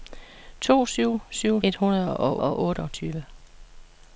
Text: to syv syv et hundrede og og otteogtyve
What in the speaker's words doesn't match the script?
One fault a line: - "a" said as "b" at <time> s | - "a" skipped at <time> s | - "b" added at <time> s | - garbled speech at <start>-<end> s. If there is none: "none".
none